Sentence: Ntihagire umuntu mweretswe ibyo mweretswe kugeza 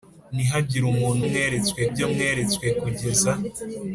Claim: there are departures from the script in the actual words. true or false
false